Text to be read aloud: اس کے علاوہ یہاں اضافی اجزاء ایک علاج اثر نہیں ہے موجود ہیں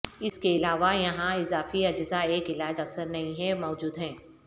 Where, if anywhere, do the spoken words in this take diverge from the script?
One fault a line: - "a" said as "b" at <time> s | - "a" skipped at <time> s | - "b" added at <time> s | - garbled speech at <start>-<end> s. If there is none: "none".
none